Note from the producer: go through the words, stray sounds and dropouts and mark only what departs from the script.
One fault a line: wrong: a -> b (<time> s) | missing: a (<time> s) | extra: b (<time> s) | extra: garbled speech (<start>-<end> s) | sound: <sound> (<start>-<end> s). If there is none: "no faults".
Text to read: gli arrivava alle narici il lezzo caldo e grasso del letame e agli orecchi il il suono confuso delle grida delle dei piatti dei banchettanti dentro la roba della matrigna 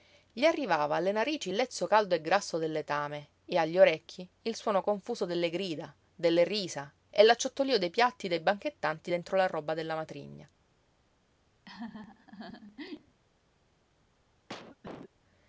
missing: il (4.6 s)
extra: risa e l'acciottolío (6.5 s)
sound: laugh (11.7-13.2 s)
sound: cough (14.5-15.1 s)